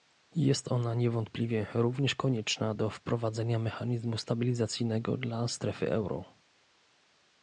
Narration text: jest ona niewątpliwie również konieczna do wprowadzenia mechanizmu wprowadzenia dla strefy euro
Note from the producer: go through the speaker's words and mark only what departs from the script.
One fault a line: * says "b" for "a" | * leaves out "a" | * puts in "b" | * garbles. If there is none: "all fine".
* says "stabilizacyjnego" for "wprowadzenia"